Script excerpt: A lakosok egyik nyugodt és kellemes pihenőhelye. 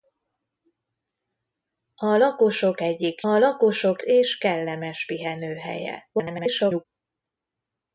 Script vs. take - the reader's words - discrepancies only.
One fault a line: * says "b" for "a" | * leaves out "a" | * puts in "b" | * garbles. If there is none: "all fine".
* says "lakosok" for "nyugodt"
* garbles